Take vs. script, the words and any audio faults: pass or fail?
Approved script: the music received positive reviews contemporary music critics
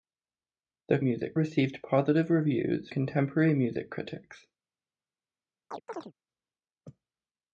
fail